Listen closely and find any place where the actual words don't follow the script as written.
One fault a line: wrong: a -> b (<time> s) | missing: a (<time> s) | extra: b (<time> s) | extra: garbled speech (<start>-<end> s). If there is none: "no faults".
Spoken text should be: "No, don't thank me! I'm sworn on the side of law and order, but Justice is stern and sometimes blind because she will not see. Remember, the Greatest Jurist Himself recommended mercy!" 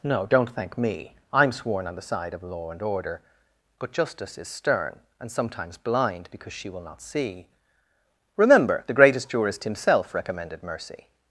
no faults